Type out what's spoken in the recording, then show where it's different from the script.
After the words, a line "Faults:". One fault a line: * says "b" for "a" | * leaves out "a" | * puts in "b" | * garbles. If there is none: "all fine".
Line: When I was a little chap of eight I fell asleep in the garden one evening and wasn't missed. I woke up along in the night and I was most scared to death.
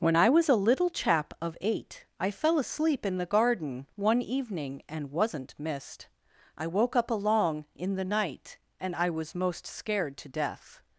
When I was a little chap of eight I fell asleep in the garden one evening and wasn't missed. I woke up along in the night and I was most scared to death.
Faults:
all fine